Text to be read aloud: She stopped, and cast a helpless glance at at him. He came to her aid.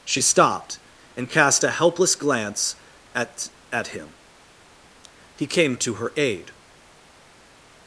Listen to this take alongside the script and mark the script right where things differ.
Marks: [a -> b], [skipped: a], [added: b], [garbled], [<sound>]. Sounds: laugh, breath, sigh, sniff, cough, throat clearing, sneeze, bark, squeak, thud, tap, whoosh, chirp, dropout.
She stopped, and cast a helpless glance at at him. He came to her aid.